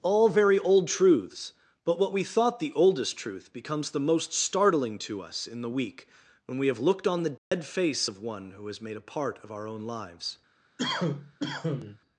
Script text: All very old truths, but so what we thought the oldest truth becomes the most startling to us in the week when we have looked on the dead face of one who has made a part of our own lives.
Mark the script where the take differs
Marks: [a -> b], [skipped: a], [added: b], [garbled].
All very old truths, but [skipped: so] what we thought the oldest truth becomes the most startling to us in the week when we have looked on the dead face of one who has made a part of our own lives.